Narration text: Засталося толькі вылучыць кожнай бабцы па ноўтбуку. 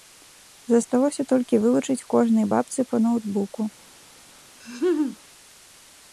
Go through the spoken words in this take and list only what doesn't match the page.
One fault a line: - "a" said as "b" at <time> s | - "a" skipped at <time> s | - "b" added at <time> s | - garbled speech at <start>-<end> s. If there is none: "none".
none